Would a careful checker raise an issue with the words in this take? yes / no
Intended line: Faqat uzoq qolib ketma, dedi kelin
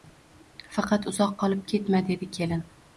no